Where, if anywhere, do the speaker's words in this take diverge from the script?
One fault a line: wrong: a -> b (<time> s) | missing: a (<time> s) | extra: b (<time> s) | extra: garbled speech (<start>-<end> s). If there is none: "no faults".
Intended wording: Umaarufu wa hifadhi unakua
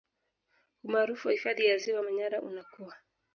extra: ya Ziwa Manyara (1.6 s)